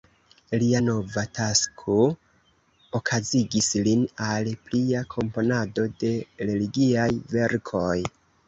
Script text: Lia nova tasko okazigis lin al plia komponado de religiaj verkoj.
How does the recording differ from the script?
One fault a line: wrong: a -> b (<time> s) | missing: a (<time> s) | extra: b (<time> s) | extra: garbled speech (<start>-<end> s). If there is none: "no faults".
no faults